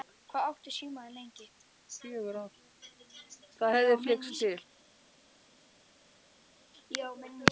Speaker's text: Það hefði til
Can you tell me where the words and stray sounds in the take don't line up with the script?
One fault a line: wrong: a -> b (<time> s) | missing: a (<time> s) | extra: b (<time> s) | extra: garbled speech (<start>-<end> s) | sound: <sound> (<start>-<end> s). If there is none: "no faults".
extra: flykkst (4.0 s)